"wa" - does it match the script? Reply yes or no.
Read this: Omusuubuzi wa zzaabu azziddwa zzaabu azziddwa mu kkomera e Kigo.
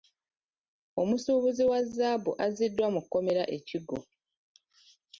yes